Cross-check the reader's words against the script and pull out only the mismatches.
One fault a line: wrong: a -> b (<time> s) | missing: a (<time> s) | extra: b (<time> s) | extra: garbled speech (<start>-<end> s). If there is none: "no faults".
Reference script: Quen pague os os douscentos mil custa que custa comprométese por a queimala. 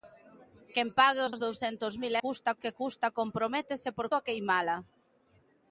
no faults